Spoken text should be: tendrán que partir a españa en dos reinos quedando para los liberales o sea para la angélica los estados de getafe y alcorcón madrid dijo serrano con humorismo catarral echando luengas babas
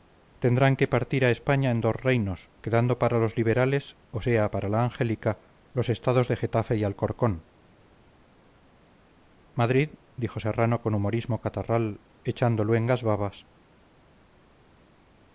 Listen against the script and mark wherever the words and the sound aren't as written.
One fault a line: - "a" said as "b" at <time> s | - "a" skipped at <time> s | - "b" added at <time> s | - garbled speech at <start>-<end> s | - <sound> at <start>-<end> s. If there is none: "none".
none